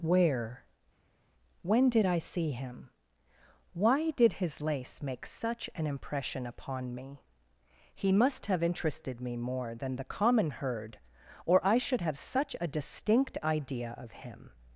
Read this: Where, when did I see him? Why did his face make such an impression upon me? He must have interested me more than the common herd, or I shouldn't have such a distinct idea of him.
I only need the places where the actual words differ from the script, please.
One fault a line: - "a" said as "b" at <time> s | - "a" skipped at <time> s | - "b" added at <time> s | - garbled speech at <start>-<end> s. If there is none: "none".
- "face" said as "lace" at 4.6 s
- "shouldn't" said as "should" at 11.8 s